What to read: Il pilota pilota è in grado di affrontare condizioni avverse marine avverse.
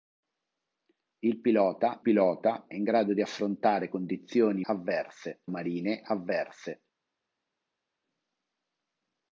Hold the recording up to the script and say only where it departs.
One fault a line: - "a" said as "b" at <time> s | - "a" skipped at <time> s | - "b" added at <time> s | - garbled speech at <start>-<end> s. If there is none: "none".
none